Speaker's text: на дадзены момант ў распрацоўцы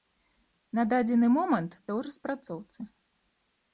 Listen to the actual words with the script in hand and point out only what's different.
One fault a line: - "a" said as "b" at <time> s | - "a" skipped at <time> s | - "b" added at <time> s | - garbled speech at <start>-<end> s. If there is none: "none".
none